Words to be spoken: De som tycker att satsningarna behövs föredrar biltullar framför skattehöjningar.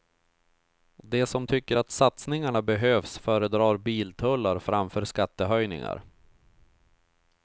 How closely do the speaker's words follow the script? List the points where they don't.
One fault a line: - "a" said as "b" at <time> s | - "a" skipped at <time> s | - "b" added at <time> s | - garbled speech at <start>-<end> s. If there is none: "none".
none